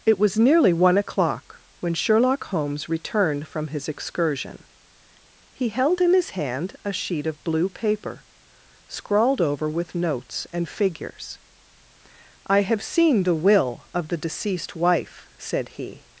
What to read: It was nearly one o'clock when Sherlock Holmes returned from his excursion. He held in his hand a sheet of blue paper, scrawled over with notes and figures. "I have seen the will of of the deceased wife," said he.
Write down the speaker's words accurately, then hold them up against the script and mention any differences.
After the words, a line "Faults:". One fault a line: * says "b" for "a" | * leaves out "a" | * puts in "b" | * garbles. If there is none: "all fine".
It was nearly one o'clock when Sherlock Holmes returned from his excursion. He held in his hand a sheet of blue paper, scrawled over with notes and figures. "I have seen the will of the deceased wife," said he.
Faults:
* leaves out "of"